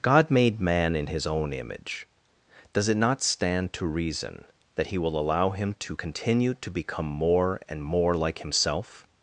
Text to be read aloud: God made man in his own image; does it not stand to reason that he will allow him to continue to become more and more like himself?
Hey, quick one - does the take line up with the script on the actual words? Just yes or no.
yes